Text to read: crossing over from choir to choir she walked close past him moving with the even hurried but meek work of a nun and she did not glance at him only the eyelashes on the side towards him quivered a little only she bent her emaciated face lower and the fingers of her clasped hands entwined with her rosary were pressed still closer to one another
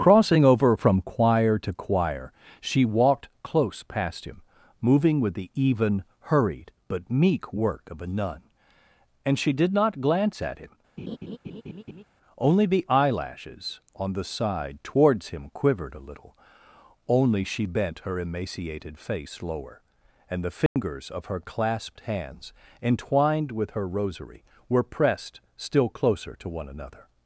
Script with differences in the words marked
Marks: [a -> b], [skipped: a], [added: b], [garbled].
crossing over from choir to choir she walked close past him moving with the even hurried but meek work of a nun and she did not glance at him only the eyelashes on the side towards him quivered a little only she bent her emaciated face lower and the fingers of her clasped hands entwined with her rosary were pressed still closer to one another